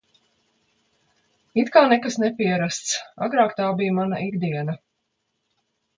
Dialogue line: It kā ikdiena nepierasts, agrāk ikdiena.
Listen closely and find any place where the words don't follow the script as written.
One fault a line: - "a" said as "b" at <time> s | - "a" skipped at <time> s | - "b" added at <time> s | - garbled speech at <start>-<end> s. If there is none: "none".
- "ikdiena" said as "nekas" at 1.9 s
- "tā bija mana" added at 3.6 s